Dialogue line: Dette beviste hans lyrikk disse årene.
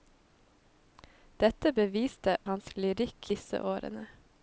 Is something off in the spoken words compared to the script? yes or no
no